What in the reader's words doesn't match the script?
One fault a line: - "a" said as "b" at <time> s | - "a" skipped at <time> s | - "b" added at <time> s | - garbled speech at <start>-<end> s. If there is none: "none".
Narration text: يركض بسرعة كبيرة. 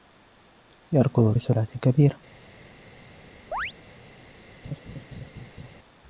none